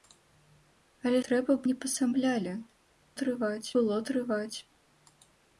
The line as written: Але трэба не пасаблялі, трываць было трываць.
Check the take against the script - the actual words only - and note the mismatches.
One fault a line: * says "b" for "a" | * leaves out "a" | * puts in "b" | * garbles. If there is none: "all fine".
all fine